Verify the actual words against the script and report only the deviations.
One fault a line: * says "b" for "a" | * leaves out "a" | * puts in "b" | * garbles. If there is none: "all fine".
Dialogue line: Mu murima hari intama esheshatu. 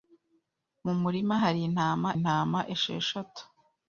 * puts in "intama"